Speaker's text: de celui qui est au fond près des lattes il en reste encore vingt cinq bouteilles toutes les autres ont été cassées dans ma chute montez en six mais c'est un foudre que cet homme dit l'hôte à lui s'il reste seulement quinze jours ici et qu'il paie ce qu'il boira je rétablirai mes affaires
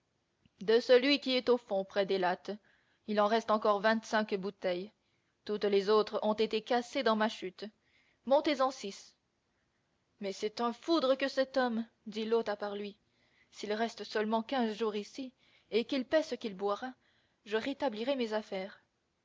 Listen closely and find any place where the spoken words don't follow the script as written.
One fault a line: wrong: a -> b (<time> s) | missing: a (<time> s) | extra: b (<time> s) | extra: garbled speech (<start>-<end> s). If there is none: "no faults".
extra: part (12.6 s)